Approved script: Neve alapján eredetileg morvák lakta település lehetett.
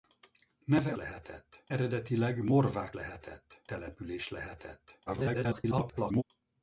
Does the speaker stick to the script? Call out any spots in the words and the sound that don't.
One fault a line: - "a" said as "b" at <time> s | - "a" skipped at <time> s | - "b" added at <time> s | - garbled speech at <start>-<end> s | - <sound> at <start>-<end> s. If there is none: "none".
- "alapján" said as "lehetett" at 0.9 s
- "lakta" said as "lehetett" at 2.9 s
- garbled speech at 5.1-6.2 s